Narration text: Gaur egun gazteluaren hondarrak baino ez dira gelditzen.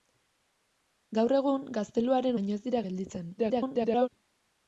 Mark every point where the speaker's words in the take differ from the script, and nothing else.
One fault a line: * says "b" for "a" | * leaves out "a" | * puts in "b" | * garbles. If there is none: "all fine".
* leaves out "hondarrak"
* garbles